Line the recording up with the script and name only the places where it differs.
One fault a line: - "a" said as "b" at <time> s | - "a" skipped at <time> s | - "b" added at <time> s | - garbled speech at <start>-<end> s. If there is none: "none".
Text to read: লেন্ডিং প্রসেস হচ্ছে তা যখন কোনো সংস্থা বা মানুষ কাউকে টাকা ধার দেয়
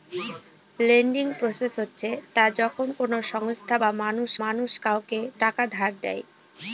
- "মানুষ" added at 4.4 s